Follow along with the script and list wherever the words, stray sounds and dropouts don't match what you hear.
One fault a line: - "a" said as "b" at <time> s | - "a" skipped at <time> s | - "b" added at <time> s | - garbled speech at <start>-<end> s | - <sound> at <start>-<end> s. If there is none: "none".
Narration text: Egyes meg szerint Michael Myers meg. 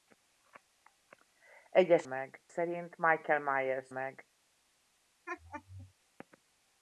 - laugh at 5.3-5.9 s